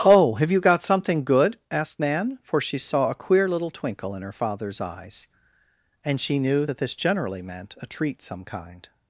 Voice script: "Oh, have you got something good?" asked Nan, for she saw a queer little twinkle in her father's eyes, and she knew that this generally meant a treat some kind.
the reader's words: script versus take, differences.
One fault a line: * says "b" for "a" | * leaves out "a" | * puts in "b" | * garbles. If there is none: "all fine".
all fine